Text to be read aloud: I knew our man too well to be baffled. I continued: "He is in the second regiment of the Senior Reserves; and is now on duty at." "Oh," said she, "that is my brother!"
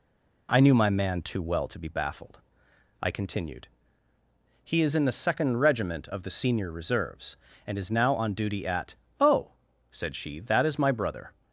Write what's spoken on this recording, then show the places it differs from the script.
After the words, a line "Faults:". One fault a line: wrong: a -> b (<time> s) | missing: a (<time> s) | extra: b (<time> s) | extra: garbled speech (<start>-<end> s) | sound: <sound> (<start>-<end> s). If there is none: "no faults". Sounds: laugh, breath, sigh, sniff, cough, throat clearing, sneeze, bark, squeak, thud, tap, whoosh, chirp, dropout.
I knew my man too well to be baffled. I continued: "He is in the second regiment of the Senior Reserves; and is now on duty at." "Oh," said she, "that is my brother!"
Faults:
wrong: our -> my (0.7 s)